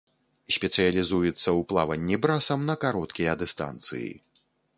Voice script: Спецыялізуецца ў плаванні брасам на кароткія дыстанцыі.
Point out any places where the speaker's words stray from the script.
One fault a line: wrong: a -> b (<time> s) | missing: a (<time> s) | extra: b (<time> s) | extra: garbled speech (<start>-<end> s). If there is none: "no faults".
no faults